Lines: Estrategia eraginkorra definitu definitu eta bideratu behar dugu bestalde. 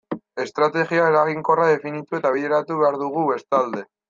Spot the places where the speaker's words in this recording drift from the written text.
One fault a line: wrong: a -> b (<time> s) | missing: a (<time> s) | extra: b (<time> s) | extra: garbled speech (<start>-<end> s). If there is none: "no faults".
missing: definitu (2.2 s)